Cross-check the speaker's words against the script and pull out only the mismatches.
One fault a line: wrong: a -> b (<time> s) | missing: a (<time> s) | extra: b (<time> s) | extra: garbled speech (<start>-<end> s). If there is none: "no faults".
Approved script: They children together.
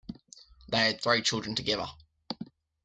extra: had three (0.8 s)